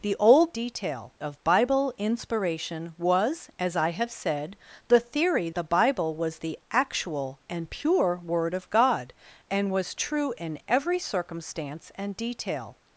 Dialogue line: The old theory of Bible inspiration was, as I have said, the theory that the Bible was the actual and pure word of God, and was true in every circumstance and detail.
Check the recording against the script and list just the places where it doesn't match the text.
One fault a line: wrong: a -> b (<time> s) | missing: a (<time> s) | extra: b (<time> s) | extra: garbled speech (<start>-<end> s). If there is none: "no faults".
wrong: theory -> detail (0.5 s)
missing: that (5.5 s)